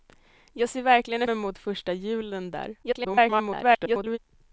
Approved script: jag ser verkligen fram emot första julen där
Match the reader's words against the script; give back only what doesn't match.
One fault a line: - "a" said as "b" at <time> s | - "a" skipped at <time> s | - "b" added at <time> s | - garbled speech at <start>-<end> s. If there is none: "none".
- "fram" skipped at 1.3 s
- garbled speech at 2.8-4.2 s